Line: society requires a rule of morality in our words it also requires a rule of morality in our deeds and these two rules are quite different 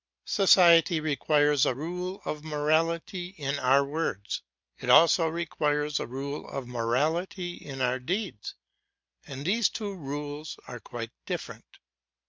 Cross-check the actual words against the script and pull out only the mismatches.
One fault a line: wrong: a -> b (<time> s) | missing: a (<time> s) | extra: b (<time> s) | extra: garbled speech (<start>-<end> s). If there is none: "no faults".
no faults